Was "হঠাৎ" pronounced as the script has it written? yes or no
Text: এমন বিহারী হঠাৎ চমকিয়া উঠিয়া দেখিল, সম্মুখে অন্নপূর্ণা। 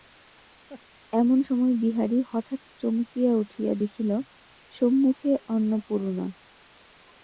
yes